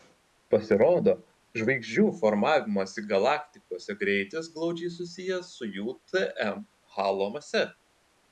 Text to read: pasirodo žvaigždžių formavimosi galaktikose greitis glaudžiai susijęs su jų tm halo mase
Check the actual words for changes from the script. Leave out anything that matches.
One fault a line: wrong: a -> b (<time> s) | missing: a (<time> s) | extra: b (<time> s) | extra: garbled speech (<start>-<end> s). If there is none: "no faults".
no faults